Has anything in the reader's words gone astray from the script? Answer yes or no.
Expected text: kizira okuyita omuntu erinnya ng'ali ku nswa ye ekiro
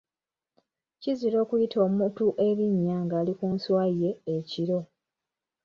no